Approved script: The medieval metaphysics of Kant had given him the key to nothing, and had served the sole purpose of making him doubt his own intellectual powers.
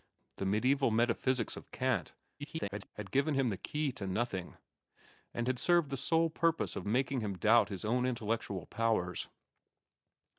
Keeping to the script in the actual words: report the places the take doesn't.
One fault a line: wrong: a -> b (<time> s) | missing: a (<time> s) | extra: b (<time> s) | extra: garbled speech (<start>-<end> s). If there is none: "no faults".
extra: garbled speech (2.4-2.9 s)